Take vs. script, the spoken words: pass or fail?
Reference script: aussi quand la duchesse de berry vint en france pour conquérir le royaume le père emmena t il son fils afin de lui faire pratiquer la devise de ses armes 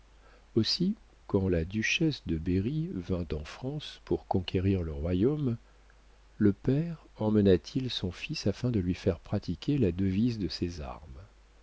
pass